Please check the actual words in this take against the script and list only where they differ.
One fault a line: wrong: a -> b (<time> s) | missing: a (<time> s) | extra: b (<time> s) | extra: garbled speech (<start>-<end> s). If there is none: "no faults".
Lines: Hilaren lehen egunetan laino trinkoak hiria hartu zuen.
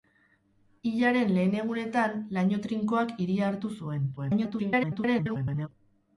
extra: garbled speech (4.2-5.7 s)